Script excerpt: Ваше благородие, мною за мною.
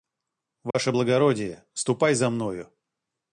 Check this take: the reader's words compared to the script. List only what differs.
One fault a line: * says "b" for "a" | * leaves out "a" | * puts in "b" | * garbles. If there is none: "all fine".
* says "ступай" for "мною"